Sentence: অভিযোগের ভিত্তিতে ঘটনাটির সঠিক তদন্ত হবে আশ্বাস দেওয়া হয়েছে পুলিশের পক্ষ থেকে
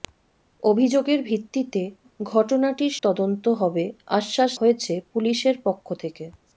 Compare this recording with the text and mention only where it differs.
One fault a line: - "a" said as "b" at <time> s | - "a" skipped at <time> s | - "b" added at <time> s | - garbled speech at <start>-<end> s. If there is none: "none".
- "সঠিক" skipped at 2.9 s
- "দেওয়া" skipped at 4.5 s